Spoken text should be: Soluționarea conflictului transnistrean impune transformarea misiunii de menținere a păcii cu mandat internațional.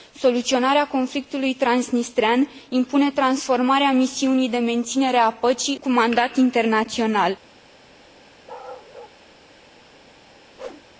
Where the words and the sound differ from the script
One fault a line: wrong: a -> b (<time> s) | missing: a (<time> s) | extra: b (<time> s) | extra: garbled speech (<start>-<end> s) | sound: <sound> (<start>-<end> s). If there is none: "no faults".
sound: bark (8.5-9.2 s)
sound: whoosh (10.5-10.9 s)